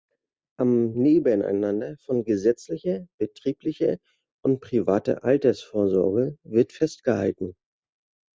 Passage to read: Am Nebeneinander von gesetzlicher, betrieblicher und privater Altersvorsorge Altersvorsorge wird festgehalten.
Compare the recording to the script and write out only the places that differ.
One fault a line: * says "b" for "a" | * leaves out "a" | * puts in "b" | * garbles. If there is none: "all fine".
* leaves out "Altersvorsorge"